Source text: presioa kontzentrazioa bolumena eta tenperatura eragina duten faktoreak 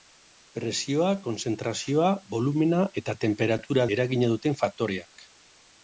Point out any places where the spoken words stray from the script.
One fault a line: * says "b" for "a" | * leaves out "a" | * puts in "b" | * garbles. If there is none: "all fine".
all fine